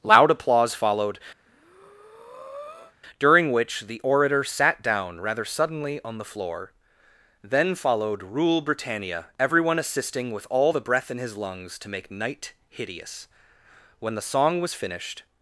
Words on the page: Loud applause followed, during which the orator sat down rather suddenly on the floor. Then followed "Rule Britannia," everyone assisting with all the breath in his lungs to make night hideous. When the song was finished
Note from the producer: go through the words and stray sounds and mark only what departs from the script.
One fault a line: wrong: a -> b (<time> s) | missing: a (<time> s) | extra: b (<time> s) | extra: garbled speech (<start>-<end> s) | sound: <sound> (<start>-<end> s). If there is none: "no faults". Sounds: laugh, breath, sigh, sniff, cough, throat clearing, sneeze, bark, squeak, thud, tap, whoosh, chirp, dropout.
sound: breath (1.4-2.9 s)